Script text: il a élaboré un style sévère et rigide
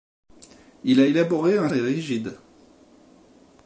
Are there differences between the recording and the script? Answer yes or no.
yes